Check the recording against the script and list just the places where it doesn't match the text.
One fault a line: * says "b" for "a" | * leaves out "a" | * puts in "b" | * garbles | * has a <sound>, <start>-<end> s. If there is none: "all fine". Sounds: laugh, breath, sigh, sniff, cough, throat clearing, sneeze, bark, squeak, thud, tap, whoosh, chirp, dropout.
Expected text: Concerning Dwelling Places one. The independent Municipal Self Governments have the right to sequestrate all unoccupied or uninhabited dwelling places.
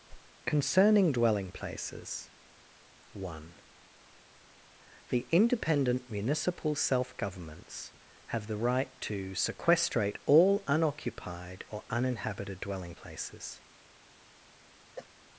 * has a whoosh, 0.1-0.3 s
* has a cough, 15.0-15.1 s